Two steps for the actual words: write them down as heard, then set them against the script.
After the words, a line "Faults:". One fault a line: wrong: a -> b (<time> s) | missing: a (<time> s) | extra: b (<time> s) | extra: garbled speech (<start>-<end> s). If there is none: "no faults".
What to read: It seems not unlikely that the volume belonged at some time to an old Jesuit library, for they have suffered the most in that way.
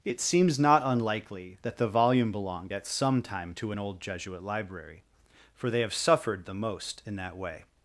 It seems not unlikely that the volume belonged at some time to an old Jesuit library, for they have suffered the most in that way.
Faults:
no faults